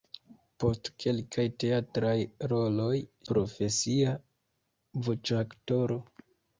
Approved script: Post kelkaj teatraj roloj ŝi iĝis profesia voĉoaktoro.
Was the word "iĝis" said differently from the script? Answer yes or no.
yes